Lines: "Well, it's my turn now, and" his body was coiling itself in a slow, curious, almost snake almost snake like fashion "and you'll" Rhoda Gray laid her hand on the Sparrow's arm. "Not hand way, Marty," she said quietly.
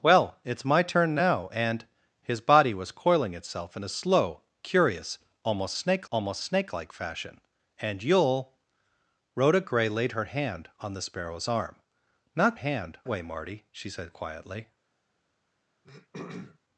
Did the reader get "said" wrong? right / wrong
right